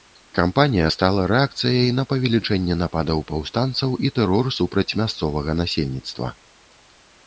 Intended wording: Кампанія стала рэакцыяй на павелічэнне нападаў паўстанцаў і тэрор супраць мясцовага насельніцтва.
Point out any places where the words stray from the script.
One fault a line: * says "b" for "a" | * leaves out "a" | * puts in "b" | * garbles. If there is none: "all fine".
all fine